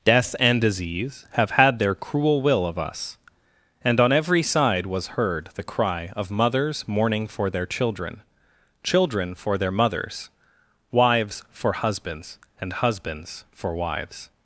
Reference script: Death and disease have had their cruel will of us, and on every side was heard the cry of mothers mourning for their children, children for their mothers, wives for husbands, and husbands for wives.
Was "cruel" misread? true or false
false